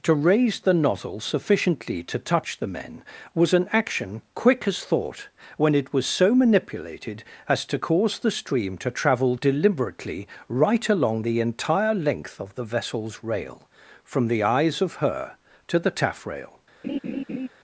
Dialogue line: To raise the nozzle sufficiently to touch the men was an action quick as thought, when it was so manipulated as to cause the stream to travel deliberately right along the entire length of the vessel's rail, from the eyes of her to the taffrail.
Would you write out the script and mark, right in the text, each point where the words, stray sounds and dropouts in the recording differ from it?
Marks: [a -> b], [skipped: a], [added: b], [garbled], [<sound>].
To raise the nozzle sufficiently to touch the men was an action quick as thought, when it was so manipulated as to cause the stream to travel deliberately right along the entire length of the vessel's rail, from the eyes of her to the taffrail. [laugh]